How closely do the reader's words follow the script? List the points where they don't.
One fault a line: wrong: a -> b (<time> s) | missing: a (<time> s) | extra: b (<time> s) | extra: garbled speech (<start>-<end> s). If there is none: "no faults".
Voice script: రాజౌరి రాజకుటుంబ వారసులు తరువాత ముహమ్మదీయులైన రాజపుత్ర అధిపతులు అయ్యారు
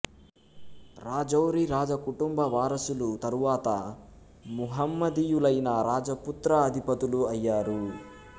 no faults